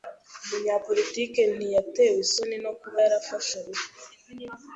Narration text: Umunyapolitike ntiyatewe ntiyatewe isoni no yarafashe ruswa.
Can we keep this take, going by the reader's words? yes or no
no